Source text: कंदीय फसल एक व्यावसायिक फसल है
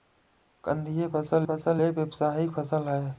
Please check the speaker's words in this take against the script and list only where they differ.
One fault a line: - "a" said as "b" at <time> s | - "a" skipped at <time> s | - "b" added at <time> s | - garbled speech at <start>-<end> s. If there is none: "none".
- "फसल" added at 1.5 s